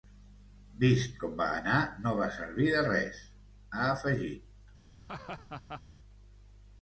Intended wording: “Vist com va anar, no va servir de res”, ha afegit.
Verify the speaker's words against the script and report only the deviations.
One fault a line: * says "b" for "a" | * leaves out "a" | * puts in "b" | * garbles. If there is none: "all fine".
all fine